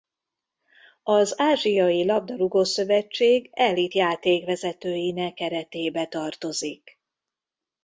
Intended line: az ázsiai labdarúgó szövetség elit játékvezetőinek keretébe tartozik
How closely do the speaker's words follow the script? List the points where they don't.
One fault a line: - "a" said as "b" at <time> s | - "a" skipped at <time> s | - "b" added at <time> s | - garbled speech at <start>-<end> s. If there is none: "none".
none